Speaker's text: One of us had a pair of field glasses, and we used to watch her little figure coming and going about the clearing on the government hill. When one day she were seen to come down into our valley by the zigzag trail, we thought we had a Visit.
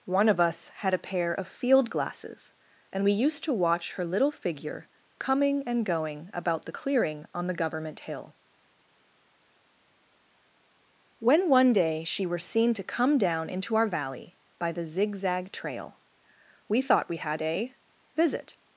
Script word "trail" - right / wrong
right